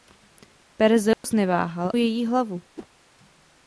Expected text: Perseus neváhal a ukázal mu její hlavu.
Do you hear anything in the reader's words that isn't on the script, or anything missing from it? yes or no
yes